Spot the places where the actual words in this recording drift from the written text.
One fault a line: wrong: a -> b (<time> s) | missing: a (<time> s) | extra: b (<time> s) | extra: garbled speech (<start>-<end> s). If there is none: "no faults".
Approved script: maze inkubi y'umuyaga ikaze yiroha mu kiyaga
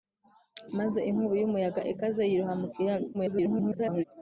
extra: garbled speech (3.1-4.0 s)